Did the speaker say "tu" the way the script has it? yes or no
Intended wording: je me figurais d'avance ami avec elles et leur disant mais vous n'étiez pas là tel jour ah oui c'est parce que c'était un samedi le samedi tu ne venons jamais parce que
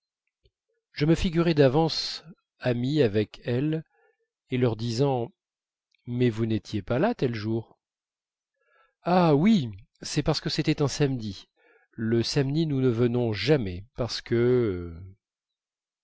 no